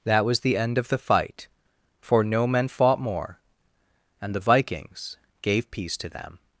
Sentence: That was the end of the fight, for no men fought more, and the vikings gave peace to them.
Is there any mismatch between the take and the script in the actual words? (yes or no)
no